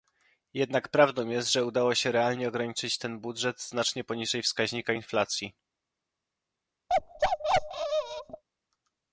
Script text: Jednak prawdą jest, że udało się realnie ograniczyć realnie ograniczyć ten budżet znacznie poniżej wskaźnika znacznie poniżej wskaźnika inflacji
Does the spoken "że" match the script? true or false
true